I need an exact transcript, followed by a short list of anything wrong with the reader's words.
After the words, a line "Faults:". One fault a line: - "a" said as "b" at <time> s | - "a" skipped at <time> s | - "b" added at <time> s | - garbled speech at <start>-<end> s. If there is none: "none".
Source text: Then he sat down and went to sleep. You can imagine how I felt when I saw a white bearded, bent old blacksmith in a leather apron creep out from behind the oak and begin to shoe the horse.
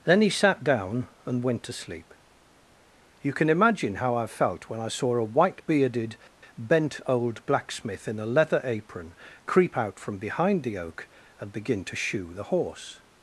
Then he sat down and went to sleep. You can imagine how I felt when I saw a white bearded, bent old blacksmith in a leather apron creep out from behind the oak and begin to shoe the horse.
Faults:
none